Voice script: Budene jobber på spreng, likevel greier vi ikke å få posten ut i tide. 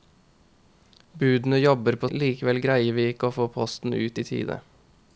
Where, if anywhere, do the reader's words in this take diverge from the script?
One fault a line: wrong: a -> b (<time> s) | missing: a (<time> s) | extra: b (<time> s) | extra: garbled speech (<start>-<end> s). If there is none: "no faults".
missing: spreng (2.1 s)